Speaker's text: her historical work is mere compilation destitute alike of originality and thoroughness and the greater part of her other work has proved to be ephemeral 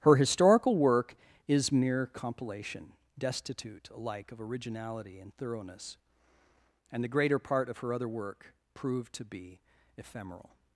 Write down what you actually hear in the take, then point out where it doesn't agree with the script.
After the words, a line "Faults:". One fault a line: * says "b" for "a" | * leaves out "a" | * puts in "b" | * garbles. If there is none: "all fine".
her historical work is mere compilation destitute alike of originality and thoroughness and the greater part of her other work proved to be ephemeral
Faults:
* leaves out "has"